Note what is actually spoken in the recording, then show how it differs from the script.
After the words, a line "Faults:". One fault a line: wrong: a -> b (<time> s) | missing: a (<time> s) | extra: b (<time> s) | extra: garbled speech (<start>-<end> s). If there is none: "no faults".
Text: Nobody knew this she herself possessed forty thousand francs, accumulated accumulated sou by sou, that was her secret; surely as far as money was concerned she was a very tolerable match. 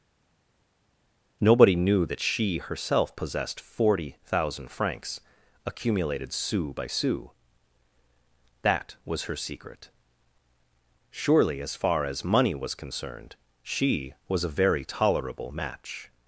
Nobody knew that she herself possessed forty thousand francs, accumulated sou by sou, that was her secret; surely as far as money was concerned she was a very tolerable match.
Faults:
wrong: this -> that (2.1 s)
missing: accumulated (6.3 s)